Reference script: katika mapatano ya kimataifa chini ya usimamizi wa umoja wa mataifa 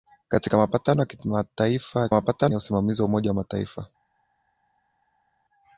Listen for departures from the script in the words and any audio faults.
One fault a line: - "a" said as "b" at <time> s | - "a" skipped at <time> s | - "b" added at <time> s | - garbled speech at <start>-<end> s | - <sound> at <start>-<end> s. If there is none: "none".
- "chini" said as "mapatano" at 2.1 s